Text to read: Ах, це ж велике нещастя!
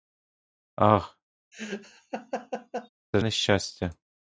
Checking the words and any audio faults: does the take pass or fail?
fail